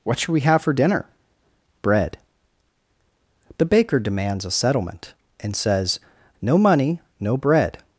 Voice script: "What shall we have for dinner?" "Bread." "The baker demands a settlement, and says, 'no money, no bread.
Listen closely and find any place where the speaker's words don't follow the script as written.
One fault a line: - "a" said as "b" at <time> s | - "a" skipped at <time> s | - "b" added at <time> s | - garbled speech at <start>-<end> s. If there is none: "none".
- "shall" said as "should" at 0.2 s